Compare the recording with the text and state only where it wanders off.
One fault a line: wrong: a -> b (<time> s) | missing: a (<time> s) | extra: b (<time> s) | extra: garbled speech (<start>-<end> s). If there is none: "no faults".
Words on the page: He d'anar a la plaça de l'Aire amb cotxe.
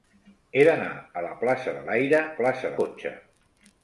wrong: amb -> plaça (2.4 s)